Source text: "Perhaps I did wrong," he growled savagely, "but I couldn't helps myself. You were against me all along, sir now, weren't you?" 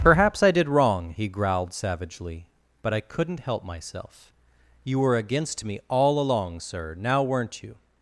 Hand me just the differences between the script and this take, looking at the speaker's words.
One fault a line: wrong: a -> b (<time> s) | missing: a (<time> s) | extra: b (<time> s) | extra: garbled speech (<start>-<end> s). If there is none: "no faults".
wrong: helps -> help (3.4 s)